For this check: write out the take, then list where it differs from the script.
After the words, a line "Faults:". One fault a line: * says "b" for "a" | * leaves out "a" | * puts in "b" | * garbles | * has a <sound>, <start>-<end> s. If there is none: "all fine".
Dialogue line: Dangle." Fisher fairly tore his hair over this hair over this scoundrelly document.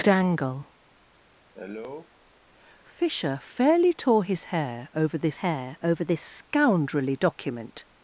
Dangle." Fisher fairly tore his hair over this hair over this scoundrelly document.
Faults:
* has a cough, 1.5-2.1 s